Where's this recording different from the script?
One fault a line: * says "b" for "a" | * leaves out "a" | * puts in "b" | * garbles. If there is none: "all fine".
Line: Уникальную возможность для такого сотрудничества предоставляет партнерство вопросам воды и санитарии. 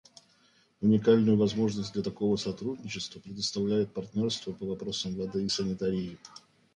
* puts in "по"